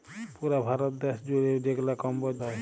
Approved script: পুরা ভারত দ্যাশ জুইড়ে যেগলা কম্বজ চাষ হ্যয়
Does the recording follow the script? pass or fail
fail